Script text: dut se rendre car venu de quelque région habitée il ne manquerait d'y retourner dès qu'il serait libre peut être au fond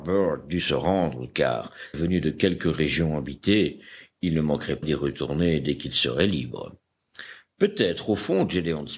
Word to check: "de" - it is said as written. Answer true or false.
true